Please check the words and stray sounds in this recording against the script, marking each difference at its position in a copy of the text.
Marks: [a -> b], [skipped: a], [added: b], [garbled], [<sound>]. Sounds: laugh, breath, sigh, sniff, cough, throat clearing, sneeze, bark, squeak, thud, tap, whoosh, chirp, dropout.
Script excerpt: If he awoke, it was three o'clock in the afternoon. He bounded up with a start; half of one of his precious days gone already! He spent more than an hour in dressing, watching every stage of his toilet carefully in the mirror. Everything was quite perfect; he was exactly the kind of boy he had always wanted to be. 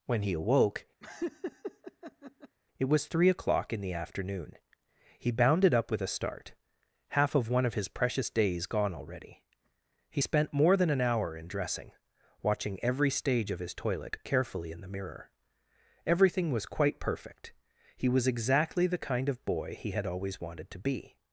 [If -> When] he awoke, [laugh] it was three o'clock in the afternoon. He bounded up with a start; half of one of his precious days gone already! He spent more than an hour in dressing, watching every stage of his toilet carefully in the mirror. Everything was quite perfect; he was exactly the kind of boy he had always wanted to be.